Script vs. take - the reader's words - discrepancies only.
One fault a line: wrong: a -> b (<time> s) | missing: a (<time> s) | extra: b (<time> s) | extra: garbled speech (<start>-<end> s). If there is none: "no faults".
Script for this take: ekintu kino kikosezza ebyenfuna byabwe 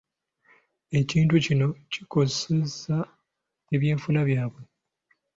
no faults